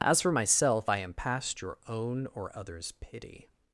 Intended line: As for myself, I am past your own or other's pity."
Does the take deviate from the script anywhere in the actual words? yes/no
no